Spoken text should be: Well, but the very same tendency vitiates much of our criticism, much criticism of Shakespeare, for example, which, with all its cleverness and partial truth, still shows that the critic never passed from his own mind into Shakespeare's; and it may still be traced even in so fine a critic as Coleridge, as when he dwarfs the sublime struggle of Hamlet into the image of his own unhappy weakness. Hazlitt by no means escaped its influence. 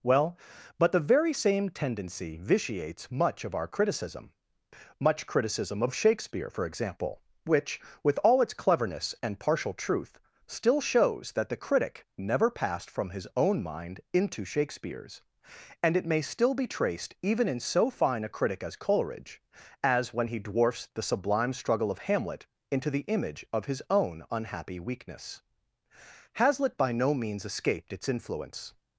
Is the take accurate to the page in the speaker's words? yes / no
yes